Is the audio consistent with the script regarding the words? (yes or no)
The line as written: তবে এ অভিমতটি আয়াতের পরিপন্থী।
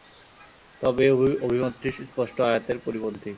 no